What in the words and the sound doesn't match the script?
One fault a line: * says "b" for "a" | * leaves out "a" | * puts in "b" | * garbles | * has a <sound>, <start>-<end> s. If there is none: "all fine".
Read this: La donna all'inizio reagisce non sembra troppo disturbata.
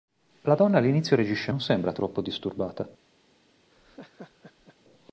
* has a laugh, 3.7-4.8 s